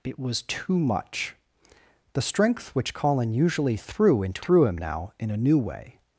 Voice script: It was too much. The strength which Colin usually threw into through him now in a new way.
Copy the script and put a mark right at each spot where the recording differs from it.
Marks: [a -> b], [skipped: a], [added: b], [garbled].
It was too much. The strength which Colin usually threw into through him now in a new way.